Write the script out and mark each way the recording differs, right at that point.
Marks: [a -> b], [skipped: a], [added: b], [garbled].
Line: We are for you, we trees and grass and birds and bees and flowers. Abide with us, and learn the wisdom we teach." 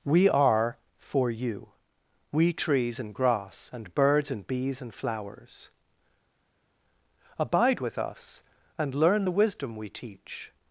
We are for you, we trees and grass and birds and bees and flowers. Abide with us, and learn the wisdom we teach."